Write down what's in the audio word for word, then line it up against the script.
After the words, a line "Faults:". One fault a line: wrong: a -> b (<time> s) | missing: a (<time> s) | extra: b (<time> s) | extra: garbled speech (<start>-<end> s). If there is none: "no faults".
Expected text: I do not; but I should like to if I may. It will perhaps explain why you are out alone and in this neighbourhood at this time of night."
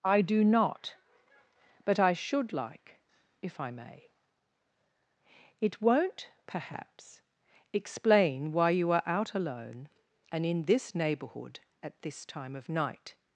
I do not; but I should like if I may. It won't perhaps explain why you are out alone and in this neighbourhood at this time of night."
Faults:
missing: to (3.0 s)
wrong: will -> won't (5.8 s)